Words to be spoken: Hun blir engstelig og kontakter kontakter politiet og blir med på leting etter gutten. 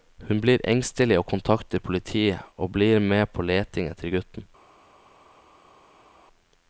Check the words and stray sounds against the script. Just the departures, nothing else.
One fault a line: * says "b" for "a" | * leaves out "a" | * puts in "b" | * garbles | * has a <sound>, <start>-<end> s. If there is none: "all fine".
* leaves out "kontakter"